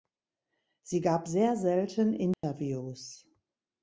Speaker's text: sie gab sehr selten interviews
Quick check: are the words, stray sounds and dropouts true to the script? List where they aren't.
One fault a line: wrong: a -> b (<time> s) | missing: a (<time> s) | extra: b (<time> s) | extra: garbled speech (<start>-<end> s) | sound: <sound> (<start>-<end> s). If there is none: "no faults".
sound: dropout (2.3-2.4 s)